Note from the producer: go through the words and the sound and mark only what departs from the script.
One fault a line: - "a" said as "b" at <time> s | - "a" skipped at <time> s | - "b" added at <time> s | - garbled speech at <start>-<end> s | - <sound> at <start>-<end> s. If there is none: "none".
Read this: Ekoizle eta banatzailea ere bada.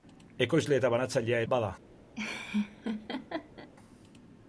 - "ere" skipped at 1.4 s
- laugh at 2.2-3.7 s